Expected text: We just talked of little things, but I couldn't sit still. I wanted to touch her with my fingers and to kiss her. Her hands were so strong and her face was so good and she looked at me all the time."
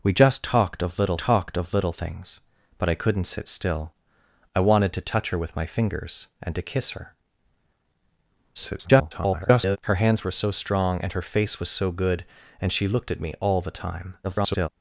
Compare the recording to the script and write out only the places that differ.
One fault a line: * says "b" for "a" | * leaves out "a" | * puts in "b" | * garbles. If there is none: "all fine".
* puts in "talked of little"
* garbles
* garbles